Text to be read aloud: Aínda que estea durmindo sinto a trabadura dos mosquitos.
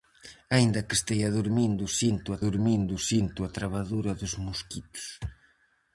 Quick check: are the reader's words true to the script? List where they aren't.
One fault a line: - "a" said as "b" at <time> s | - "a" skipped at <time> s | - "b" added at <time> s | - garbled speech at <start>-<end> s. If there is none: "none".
- "durmindo sinto a" added at 2.5 s